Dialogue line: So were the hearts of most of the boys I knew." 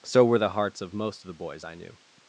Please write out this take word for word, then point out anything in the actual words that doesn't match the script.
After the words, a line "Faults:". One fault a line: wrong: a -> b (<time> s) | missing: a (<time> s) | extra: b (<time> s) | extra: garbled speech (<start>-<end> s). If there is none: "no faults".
So were the hearts of most of the boys I knew."
Faults:
no faults